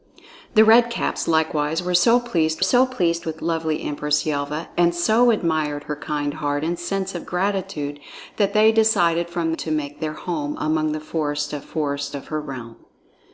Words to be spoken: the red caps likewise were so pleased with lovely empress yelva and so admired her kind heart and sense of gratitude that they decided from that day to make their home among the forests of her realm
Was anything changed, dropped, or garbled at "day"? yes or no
yes